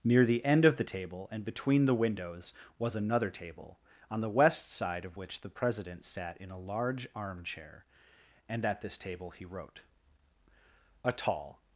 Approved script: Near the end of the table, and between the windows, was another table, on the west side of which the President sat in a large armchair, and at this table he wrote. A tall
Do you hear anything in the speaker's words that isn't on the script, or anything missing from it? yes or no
no